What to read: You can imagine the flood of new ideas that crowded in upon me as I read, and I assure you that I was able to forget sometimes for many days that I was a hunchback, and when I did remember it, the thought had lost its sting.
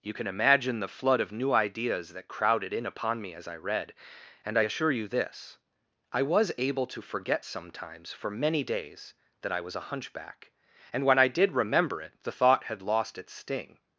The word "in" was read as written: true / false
true